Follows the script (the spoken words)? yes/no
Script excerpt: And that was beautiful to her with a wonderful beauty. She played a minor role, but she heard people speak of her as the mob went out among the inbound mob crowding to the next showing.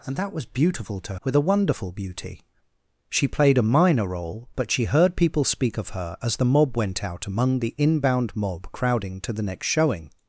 no